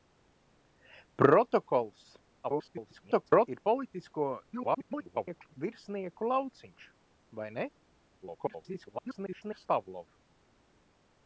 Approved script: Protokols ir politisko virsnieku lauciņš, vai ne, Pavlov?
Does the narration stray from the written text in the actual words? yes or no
yes